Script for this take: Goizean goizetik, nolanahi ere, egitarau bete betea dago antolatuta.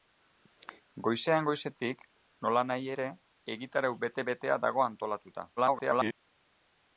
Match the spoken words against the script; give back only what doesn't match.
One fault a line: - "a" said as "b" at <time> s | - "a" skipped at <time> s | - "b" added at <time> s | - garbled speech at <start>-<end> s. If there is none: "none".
- garbled speech at 5.6-6.1 s